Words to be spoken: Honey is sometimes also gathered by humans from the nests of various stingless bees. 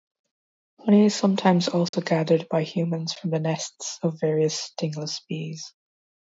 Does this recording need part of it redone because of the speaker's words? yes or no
no